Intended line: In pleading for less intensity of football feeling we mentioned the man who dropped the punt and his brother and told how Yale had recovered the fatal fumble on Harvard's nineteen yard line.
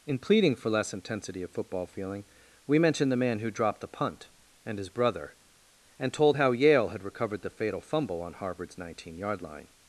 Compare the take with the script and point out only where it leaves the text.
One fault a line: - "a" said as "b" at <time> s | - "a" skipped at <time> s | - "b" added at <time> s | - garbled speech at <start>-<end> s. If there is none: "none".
none